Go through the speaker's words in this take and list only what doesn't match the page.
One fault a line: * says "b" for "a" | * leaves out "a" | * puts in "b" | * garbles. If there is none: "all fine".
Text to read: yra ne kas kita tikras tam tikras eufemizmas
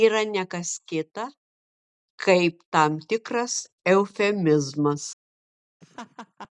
* says "kaip" for "tikras"